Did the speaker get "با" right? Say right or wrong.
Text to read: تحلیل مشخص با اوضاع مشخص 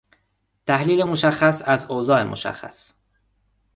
wrong